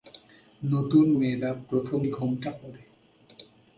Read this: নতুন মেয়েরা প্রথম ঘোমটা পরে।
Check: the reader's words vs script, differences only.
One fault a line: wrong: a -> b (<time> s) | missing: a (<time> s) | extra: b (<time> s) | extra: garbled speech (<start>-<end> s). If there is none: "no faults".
no faults